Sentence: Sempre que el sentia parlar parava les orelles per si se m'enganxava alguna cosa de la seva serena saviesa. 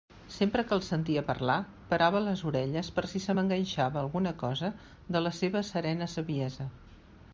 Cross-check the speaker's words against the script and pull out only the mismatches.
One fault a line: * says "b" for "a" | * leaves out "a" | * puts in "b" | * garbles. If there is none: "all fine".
all fine